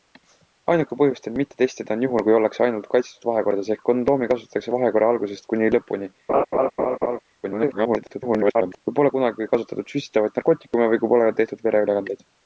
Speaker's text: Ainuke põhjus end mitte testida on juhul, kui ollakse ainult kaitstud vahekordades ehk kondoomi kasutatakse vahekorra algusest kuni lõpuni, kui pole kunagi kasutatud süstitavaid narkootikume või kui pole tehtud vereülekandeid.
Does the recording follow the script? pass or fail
fail